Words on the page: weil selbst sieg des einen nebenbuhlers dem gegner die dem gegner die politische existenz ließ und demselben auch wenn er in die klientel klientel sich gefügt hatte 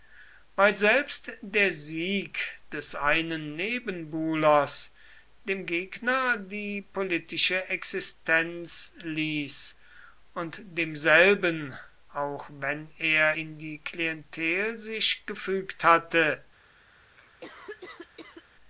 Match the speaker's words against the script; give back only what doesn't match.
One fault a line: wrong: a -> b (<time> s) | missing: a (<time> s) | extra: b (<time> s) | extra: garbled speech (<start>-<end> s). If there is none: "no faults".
extra: der (1.4 s)
missing: dem gegner die (6.8 s)
missing: klientel (14.8 s)